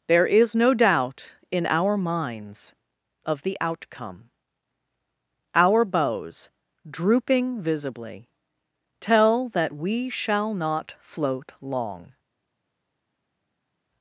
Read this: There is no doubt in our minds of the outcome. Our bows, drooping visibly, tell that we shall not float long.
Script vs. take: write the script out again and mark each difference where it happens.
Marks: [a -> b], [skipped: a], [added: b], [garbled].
There is no doubt in our minds of the outcome. Our bows, drooping visibly, tell that we shall not float long.